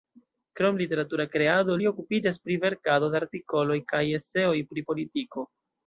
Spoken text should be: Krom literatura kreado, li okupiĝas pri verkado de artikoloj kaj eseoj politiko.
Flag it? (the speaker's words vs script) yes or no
yes